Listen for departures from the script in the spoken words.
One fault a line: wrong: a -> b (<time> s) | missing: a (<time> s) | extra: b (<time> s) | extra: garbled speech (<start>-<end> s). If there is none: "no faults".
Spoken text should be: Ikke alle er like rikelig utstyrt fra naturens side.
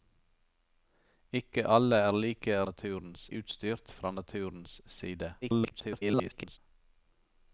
wrong: rikelig -> naturens (2.7 s)
extra: garbled speech (5.4-6.6 s)